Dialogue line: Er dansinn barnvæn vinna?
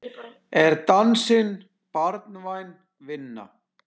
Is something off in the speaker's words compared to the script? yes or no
no